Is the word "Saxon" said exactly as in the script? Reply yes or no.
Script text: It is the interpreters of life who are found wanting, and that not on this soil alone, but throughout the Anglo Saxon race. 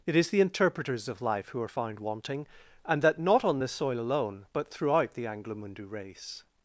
no